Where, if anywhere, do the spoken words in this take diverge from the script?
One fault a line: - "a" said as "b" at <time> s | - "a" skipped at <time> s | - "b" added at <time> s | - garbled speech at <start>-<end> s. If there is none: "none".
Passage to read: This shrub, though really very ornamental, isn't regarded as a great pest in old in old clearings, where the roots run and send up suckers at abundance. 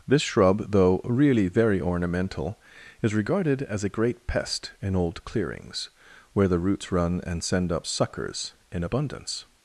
- "isn't" said as "is" at 3.0 s
- "in old" skipped at 5.2 s
- "at" said as "in" at 8.7 s